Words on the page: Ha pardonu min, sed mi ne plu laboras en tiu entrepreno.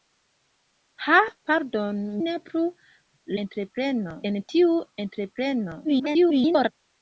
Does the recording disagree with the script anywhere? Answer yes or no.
yes